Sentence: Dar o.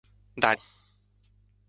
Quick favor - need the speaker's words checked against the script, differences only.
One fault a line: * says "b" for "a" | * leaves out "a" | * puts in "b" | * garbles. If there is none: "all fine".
all fine